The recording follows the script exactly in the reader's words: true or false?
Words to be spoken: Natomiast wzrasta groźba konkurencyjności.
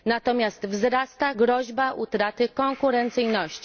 false